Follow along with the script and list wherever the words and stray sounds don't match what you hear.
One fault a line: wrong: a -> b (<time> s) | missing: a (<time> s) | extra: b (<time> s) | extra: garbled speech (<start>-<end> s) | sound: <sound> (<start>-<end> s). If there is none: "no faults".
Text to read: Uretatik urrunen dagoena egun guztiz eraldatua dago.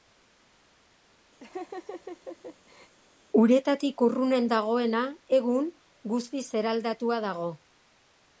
sound: laugh (1.4-2.9 s)